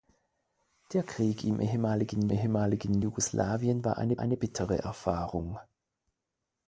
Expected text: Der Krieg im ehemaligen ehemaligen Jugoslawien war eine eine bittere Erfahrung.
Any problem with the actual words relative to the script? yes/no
no